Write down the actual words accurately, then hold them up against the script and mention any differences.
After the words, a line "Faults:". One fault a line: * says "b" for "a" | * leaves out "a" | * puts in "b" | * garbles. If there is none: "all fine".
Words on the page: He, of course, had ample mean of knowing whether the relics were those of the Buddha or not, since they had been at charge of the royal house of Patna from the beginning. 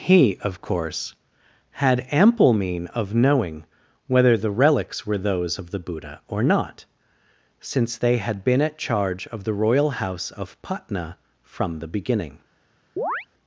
He, of course, had ample mean of knowing whether the relics were those of the Buddha or not, since they had been at charge of the royal house of Patna from the beginning.
Faults:
all fine